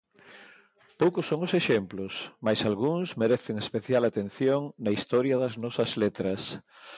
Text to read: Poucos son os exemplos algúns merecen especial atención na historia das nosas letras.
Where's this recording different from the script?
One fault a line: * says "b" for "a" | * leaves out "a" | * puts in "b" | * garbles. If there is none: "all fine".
* puts in "mais"